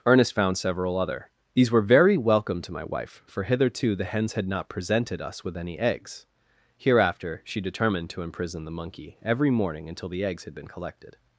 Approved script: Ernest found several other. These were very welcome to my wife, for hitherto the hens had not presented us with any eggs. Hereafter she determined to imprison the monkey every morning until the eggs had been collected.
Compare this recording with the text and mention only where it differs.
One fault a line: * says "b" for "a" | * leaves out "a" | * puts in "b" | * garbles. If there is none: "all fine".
all fine